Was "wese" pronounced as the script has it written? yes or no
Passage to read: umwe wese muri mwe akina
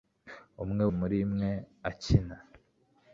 no